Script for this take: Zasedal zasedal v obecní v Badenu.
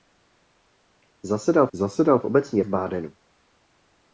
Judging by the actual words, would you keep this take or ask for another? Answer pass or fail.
pass